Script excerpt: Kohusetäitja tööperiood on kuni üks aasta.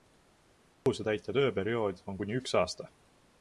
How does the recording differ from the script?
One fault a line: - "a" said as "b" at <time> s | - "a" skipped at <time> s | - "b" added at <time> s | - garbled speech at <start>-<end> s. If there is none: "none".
none